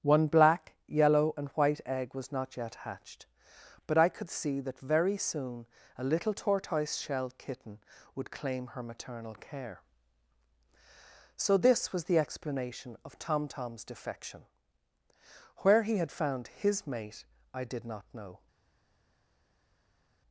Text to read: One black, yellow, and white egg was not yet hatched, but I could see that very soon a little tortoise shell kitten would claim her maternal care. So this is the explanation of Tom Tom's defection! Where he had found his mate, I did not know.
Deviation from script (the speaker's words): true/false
true